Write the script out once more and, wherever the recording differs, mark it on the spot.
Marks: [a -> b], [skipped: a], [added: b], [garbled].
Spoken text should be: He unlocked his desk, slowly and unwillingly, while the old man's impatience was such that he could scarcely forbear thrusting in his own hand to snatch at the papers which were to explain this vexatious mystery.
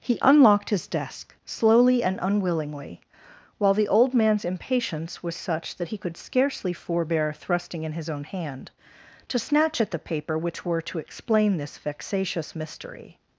He unlocked his desk, slowly and unwillingly, while the old man's impatience was such that he could scarcely forbear thrusting in his own hand to snatch at the [papers -> paper] which were to explain this vexatious mystery.